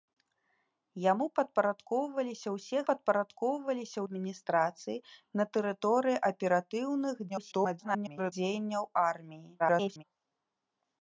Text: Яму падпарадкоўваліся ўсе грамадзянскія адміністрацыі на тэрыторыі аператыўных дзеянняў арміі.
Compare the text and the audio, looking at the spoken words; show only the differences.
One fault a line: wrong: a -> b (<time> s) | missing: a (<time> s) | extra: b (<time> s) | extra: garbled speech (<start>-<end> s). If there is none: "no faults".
wrong: грамадзянскія -> падпарадкоўваліся (2.9 s)
extra: garbled speech (7.3-8.3 s)
extra: garbled speech (9.6-10.0 s)